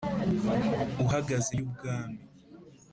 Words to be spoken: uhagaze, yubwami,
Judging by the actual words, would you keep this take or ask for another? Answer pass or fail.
pass